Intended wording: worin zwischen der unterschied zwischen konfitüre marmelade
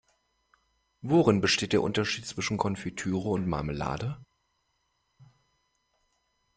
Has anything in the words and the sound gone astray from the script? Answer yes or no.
yes